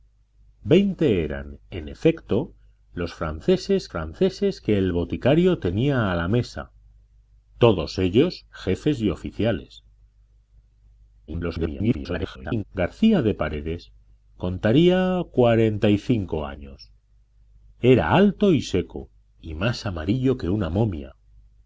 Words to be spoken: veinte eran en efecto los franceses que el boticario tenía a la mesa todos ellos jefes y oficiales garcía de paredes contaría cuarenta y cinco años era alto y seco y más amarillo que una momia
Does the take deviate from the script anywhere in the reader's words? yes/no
yes